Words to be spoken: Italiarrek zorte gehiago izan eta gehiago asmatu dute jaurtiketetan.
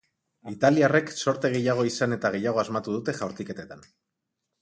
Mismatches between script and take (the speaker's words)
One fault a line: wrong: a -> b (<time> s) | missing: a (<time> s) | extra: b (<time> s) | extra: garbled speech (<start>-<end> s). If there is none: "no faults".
no faults